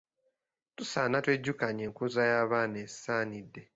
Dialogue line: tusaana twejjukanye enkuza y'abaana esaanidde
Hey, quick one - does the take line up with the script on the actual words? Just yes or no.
yes